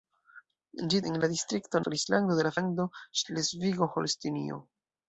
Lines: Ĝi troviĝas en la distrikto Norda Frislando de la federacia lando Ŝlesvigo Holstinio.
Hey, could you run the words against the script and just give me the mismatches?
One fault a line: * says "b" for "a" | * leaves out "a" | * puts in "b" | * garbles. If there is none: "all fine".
* leaves out "troviĝas"
* leaves out "Norda"
* leaves out "federacia"